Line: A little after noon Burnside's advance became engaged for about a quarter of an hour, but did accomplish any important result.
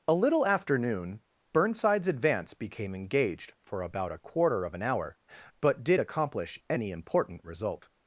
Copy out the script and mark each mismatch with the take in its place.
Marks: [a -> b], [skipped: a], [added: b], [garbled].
A little after noon Burnside's advance became engaged for about a quarter of an hour, but did accomplish any important result.